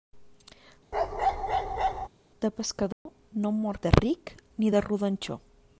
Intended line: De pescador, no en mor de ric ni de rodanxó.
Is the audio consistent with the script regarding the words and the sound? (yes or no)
no